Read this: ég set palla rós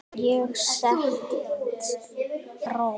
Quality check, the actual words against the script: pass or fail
fail